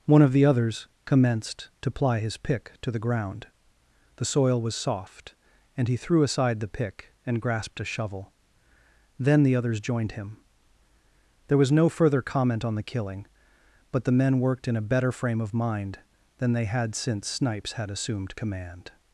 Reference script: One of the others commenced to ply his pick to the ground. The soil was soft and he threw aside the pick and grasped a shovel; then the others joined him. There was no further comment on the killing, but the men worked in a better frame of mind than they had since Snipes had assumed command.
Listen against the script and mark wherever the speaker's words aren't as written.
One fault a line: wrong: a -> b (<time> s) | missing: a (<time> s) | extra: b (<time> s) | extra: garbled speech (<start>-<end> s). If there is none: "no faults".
no faults